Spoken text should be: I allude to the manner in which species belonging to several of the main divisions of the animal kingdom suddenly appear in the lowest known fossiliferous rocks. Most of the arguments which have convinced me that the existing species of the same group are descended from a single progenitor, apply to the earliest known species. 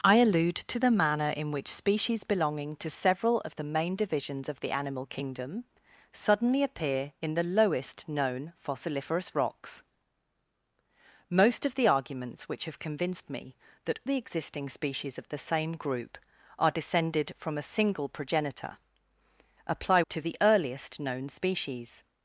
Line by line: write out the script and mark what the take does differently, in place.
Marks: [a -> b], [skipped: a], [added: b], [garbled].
I allude to the manner in which species belonging to several of the main divisions of the animal kingdom suddenly appear in the lowest known fossiliferous rocks. Most of the arguments which have convinced me that the existing species of the same group are descended from a single progenitor, apply to the earliest known species.